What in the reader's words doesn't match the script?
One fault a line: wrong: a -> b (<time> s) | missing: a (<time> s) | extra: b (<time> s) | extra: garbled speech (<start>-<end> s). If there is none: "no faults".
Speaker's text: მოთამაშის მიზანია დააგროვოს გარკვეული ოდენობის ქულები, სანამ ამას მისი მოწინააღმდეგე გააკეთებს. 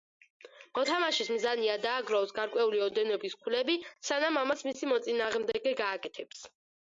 no faults